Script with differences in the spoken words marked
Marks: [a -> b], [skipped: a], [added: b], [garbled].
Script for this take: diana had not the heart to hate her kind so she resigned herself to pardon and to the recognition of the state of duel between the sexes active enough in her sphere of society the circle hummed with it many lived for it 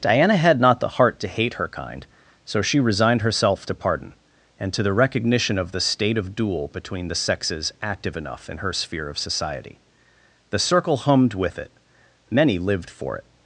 diana had not the heart to hate her kind so she resigned herself to pardon and to the recognition of the state of duel between the sexes active enough in her sphere of society the circle hummed with it many lived for it